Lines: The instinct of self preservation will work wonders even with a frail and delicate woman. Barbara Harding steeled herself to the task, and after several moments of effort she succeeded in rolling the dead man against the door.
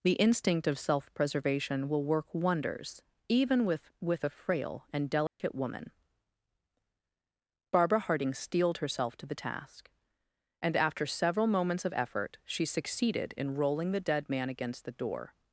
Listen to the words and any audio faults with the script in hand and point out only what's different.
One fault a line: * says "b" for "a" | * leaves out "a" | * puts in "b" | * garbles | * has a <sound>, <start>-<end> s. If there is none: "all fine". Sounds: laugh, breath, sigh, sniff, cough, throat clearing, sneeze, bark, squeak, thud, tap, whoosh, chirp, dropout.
* puts in "with"
* has a dropout, 5.3-5.4 s